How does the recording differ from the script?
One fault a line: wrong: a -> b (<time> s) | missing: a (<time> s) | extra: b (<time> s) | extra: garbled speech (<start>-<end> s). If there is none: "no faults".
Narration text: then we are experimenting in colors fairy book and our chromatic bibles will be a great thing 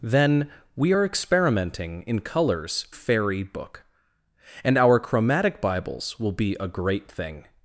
no faults